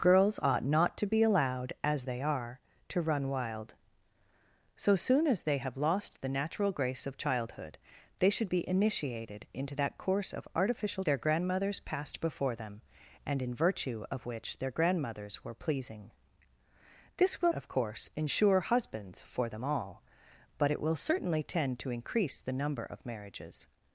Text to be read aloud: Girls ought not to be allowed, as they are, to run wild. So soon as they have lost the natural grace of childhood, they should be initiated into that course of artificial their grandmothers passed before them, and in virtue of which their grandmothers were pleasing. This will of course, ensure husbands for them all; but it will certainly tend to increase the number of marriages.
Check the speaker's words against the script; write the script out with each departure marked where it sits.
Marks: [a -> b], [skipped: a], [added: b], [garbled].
Girls ought not to be allowed, as they are, to run wild. So soon as they have lost the natural grace of childhood, they should be initiated into that course of artificial their grandmothers passed before them, and in virtue of which their grandmothers were pleasing. This will of course, ensure husbands for them all; but it will certainly tend to increase the number of marriages.